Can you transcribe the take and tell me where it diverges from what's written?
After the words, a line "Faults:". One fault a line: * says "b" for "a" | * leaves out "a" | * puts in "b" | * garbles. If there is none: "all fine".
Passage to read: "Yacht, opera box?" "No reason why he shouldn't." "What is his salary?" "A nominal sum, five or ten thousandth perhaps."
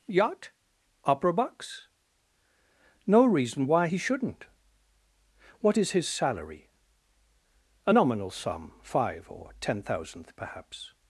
"Yacht, opera box?" "No reason why he shouldn't." "What is his salary?" "A nominal sum, five or ten thousandth perhaps."
Faults:
all fine